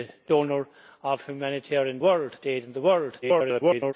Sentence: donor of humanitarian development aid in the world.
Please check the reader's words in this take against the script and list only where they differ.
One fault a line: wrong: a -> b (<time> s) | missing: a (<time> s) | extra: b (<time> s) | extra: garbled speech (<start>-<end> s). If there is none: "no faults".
wrong: development -> world (2.0 s)
extra: garbled speech (3.2-3.9 s)